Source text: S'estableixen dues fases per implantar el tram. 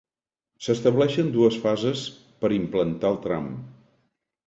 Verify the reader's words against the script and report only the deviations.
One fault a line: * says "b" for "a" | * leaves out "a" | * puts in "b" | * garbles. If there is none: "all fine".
all fine